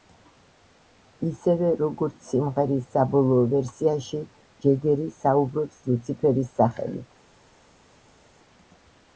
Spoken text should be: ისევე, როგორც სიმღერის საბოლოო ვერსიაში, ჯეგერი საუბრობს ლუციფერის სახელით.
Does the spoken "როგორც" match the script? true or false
true